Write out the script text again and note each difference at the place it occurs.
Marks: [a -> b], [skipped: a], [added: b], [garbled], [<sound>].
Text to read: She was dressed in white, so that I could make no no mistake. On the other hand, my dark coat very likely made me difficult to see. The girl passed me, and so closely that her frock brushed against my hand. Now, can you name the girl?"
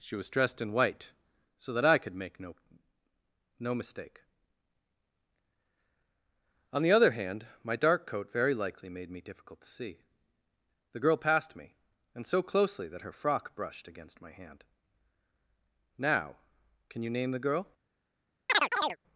She was dressed in white, so that I could make no no mistake. On the other hand, my dark coat very likely made me difficult to see. The girl passed me, and so closely that her frock brushed against my hand. Now, can you name the girl?" [chirp]